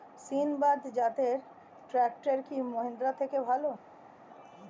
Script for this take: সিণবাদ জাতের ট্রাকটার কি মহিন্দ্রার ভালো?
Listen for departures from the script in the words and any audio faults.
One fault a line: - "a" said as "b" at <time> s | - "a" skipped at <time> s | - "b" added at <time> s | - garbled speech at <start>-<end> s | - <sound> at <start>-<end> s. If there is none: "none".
- "থেকে" added at 3.2 s